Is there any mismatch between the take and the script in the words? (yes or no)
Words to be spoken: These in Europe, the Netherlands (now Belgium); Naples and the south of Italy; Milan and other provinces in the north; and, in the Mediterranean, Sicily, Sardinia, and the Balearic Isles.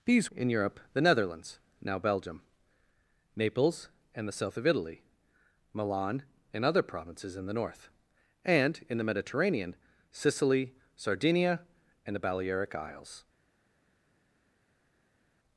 no